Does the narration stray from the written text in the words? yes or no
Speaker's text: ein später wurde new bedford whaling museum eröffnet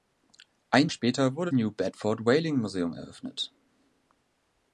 no